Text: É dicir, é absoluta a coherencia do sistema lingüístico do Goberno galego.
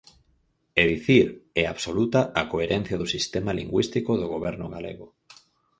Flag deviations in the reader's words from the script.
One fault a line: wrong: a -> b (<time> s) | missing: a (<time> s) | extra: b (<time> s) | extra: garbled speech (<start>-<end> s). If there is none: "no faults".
no faults